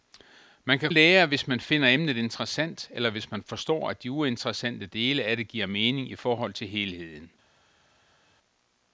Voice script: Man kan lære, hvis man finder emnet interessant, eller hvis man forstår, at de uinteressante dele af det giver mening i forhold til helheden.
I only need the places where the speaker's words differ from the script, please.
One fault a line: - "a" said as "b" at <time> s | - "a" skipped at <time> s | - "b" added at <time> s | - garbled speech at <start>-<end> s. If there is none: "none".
none